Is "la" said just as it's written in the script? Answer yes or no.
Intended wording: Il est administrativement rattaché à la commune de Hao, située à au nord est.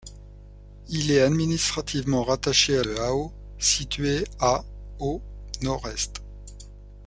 no